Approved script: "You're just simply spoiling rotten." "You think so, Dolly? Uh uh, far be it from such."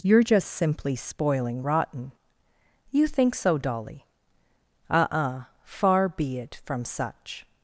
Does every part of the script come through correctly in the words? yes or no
yes